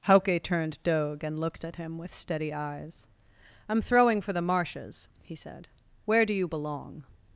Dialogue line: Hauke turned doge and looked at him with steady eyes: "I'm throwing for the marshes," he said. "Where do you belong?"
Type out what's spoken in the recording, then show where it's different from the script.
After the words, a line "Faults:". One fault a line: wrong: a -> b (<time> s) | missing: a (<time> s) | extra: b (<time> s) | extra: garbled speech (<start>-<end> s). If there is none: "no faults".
Hauke turned doge and looked at him with steady eyes: "I'm throwing for the marshes," he said. "Where do you belong?"
Faults:
no faults